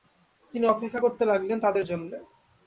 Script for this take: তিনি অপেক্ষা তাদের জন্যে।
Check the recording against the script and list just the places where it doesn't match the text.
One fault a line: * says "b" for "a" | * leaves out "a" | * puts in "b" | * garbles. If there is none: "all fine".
* puts in "করতে লাগলেন"